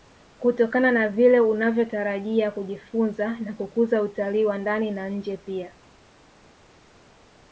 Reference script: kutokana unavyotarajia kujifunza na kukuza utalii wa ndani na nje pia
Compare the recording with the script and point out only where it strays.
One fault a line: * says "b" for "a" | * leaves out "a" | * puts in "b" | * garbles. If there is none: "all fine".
* puts in "na vile"